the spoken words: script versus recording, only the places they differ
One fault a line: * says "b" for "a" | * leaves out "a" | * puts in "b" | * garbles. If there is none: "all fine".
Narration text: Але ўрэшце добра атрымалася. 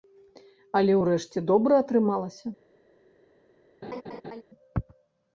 all fine